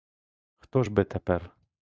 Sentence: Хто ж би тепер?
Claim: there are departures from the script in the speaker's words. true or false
false